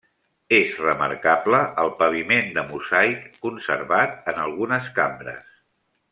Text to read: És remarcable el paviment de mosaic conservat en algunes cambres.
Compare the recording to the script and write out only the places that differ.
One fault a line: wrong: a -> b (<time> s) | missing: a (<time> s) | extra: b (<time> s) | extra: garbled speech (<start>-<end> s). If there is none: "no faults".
no faults